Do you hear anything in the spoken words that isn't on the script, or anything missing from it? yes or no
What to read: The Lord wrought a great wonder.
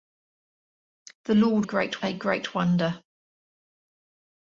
yes